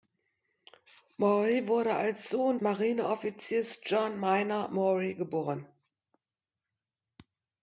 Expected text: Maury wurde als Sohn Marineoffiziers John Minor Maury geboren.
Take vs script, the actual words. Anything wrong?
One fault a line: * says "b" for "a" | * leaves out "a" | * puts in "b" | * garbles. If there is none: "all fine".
all fine